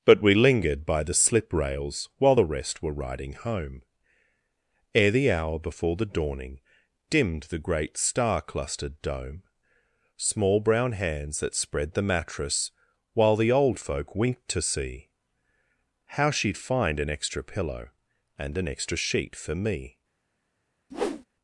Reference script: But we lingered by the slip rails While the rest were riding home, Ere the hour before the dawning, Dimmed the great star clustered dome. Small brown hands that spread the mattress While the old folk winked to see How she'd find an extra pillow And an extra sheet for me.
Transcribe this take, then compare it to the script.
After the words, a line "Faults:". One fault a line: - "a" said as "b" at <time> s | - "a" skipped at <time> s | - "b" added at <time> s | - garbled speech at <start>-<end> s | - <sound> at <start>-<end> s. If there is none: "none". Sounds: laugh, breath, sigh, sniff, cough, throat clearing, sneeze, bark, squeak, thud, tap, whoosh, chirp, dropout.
But we lingered by the slip rails While the rest were riding home, Ere the hour before the dawning, Dimmed the great star clustered dome. Small brown hands that spread the mattress While the old folk winked to see How she'd find an extra pillow And an extra sheet for me.
Faults:
- whoosh at 20.9-21.2 s